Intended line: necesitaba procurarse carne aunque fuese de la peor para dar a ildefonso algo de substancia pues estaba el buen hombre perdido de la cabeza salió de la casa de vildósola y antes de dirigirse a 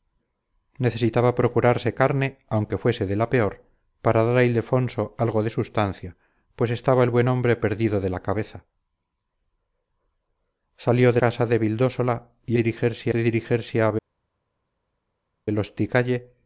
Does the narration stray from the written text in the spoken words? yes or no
yes